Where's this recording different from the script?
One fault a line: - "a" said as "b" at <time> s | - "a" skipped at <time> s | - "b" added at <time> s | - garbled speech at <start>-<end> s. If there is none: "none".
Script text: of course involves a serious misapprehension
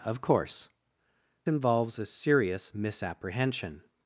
none